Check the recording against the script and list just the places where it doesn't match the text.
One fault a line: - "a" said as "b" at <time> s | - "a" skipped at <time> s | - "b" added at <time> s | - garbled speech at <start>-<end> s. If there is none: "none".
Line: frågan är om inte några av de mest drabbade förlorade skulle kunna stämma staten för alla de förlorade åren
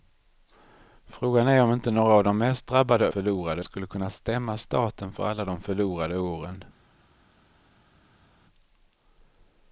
none